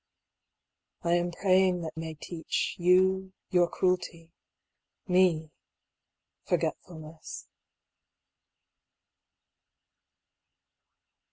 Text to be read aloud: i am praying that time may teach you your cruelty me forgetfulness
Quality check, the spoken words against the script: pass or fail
fail